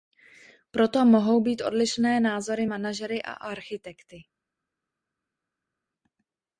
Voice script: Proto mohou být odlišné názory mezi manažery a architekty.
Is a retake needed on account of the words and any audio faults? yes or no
yes